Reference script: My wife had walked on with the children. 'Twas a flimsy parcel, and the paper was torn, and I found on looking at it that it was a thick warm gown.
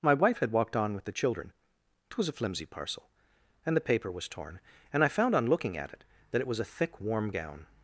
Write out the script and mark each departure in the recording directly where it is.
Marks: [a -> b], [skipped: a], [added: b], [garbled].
My wife had walked on with the children. 'Twas a flimsy parcel, and the paper was torn, and I found on looking at it that it was a thick warm gown.